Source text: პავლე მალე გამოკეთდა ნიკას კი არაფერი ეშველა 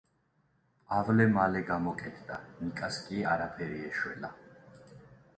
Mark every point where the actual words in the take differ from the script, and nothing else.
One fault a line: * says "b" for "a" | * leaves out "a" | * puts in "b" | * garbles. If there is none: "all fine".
all fine